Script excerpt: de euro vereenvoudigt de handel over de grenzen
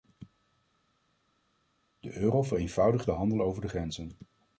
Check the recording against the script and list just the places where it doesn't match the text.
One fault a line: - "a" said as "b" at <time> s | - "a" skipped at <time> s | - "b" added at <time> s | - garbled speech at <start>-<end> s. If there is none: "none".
none